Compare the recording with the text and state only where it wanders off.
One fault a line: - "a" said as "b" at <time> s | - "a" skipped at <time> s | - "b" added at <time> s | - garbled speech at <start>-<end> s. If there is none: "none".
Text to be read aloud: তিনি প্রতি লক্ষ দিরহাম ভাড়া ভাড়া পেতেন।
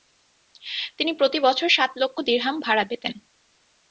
- "বছর সাত" added at 1.4 s
- "ভাড়া" skipped at 2.8 s